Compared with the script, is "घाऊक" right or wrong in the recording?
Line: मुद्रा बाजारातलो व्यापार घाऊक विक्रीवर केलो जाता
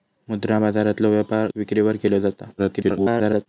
wrong